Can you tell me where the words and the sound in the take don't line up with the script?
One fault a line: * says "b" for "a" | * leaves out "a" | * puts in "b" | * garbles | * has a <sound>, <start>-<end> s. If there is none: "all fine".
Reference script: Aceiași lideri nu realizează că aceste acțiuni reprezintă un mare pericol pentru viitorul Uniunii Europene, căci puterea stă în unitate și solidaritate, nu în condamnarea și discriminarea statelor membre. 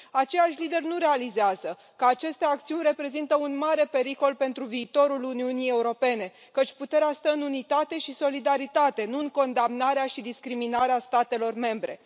all fine